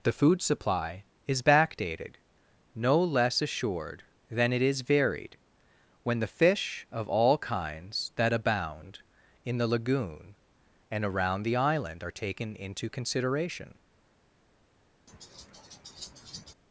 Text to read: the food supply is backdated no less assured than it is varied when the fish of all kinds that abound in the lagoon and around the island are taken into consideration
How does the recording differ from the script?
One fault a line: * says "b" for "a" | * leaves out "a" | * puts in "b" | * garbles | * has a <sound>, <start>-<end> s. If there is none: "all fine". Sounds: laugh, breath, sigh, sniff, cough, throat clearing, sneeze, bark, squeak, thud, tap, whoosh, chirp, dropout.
* has a laugh, 15.1-16.5 s